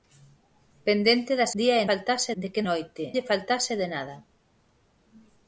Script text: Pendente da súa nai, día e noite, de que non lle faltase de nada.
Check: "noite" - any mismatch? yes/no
yes